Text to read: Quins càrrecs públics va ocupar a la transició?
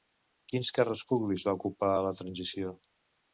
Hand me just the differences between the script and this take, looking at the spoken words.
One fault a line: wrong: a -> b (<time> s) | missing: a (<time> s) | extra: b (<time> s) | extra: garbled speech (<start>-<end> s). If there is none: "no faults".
no faults